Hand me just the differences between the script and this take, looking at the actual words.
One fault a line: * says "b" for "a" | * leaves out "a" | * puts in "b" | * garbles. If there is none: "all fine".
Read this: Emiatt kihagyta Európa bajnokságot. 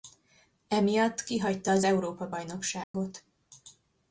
* puts in "az"